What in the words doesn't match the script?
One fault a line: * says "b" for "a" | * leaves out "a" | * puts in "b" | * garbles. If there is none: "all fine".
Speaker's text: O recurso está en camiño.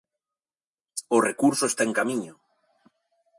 all fine